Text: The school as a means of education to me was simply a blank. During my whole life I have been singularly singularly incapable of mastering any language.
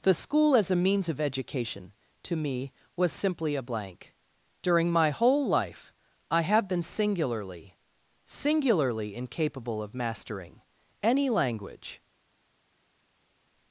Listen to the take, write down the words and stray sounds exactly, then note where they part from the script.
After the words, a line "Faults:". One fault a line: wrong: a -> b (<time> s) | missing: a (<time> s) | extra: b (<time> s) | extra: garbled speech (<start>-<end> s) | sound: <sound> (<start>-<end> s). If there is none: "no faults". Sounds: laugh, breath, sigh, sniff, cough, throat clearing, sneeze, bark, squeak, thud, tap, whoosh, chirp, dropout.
The school as a means of education to me was simply a blank. During my whole life I have been singularly singularly incapable of mastering any language.
Faults:
no faults